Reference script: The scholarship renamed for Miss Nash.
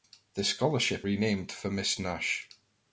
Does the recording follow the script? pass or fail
pass